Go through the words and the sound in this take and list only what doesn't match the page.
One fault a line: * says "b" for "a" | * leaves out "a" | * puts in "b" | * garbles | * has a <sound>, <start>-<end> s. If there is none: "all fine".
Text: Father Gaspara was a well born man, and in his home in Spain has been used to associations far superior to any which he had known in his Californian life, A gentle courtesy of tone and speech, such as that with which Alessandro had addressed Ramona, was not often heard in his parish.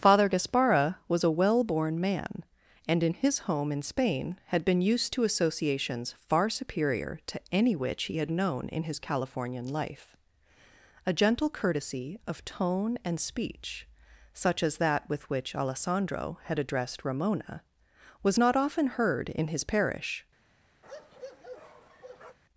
* says "had" for "has"
* has a bark, 20.8-22.4 s